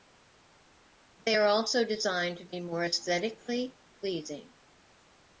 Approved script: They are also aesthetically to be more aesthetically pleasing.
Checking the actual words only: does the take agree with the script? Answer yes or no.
no